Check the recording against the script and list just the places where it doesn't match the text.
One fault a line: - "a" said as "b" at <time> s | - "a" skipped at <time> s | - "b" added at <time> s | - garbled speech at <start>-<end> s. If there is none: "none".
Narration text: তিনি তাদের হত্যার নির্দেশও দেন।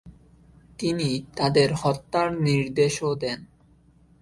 none